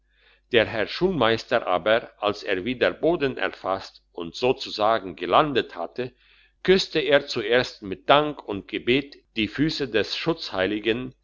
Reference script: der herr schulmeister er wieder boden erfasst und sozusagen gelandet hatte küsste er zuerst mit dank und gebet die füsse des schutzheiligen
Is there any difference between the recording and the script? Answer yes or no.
yes